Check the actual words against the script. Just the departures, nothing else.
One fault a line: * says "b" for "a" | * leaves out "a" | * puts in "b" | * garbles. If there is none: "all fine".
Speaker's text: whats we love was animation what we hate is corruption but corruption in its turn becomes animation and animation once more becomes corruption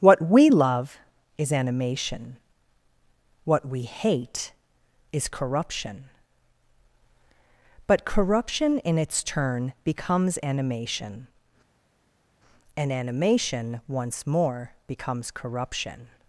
* says "what" for "whats"
* says "is" for "was"